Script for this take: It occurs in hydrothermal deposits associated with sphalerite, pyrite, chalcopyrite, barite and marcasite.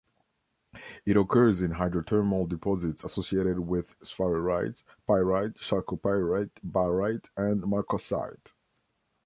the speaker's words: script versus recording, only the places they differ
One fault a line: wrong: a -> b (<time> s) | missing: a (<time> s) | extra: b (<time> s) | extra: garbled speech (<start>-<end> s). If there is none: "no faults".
no faults